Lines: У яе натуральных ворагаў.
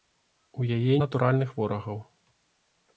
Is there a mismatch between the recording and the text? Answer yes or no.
no